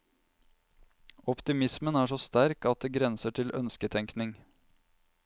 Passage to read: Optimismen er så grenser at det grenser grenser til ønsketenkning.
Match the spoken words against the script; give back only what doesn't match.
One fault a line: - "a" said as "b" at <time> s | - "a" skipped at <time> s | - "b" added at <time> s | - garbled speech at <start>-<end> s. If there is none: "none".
- "grenser" said as "sterk" at 2.2 s
- "grenser" skipped at 3.4 s